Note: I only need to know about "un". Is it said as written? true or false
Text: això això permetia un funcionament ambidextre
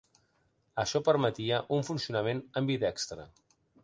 true